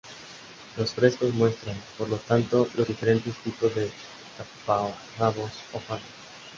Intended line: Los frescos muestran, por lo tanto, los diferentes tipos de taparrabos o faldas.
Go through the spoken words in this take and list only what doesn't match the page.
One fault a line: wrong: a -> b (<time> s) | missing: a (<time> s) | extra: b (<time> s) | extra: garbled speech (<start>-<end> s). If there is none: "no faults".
no faults